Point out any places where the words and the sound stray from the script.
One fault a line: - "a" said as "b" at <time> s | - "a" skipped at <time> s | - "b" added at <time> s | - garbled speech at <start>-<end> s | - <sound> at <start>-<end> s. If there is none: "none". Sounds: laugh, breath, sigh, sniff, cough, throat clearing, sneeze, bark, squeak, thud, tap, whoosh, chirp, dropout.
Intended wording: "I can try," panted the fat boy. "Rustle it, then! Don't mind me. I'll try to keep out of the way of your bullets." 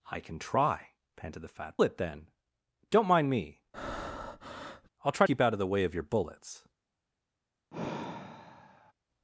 - "boy Rustle" skipped at 1.8 s
- breath at 3.7-4.9 s
- "to" skipped at 5.3 s
- sigh at 7.7-8.9 s